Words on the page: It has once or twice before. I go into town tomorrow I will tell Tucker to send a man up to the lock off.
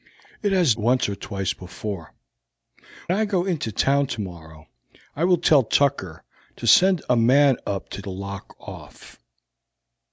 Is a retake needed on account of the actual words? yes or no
no